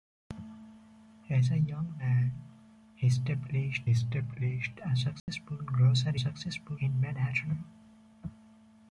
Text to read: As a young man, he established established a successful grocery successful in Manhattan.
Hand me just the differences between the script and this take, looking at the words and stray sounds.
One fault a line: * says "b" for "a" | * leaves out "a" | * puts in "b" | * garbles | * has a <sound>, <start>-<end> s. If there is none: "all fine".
* has a dropout, 5.2-5.3 s